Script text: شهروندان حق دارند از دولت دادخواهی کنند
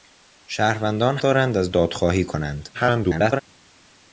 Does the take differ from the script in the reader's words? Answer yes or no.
yes